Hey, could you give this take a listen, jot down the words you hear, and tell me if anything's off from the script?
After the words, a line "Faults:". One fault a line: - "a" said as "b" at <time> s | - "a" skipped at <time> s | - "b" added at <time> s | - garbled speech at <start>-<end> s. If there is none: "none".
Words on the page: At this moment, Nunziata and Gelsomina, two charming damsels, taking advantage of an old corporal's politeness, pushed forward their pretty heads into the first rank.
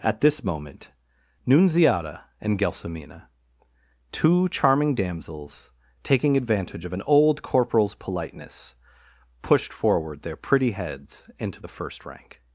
At this moment, Nunziata and Gelsomina, two charming damsels, taking advantage of an old corporal's politeness, pushed forward their pretty heads into the first rank.
Faults:
none